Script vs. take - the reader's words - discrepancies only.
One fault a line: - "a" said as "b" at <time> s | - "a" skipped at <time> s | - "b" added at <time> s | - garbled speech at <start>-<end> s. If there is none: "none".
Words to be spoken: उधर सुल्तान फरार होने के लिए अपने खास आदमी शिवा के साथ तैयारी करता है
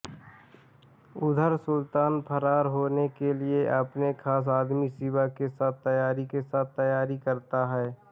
- "के साथ तैयारी" added at 6.3 s